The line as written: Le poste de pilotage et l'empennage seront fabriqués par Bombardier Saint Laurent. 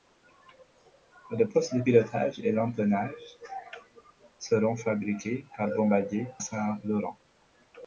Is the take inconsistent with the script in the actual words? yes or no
no